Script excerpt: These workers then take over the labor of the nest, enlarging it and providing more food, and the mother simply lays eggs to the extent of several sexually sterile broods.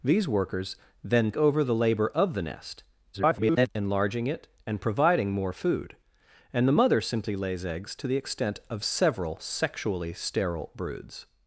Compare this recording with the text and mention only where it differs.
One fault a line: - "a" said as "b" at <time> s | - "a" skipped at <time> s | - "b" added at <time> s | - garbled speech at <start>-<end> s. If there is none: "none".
- "take" skipped at 1.3 s
- garbled speech at 3.1-3.7 s